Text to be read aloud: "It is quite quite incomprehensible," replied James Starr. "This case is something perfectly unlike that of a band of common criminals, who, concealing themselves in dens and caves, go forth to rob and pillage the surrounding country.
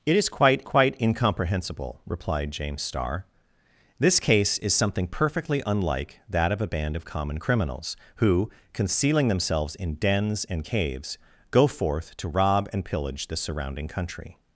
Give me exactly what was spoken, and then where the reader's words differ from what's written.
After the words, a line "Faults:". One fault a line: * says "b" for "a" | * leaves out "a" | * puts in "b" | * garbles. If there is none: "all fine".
"It is quite quite incomprehensible," replied James Starr. "This case is something perfectly unlike that of a band of common criminals, who, concealing themselves in dens and caves, go forth to rob and pillage the surrounding country.
Faults:
all fine